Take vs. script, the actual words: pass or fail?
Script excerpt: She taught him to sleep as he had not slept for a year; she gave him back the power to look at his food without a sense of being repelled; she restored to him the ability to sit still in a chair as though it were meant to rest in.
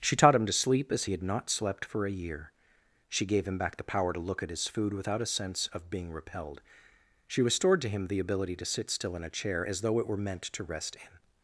pass